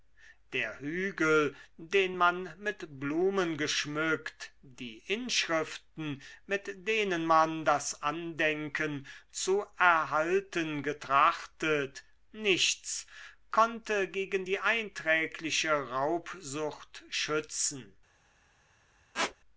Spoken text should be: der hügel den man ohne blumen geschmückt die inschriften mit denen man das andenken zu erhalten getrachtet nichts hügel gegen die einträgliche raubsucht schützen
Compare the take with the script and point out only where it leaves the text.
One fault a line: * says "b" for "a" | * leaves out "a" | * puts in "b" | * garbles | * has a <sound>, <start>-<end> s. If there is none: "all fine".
* says "mit" for "ohne"
* says "konnte" for "hügel"
* has a squeak, 19.1-19.4 s